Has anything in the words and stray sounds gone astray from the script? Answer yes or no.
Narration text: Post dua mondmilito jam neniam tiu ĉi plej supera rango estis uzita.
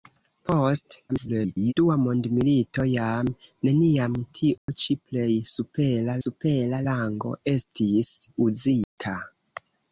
yes